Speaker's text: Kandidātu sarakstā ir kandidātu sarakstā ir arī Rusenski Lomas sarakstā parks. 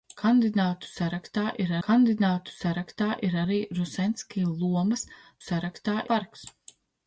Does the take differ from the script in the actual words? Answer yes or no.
no